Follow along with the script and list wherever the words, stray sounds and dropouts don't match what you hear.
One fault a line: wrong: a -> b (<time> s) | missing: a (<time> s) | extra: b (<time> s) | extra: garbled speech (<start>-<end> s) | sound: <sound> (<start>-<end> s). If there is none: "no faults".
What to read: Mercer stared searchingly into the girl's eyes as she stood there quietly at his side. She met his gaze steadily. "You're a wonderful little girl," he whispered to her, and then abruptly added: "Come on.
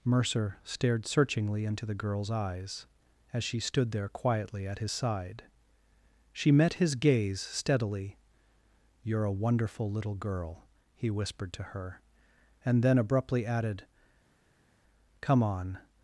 no faults